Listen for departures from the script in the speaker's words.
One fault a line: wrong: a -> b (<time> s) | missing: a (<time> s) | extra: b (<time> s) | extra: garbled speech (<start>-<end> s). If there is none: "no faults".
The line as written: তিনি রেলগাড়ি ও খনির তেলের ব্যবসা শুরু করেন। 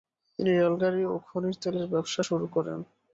no faults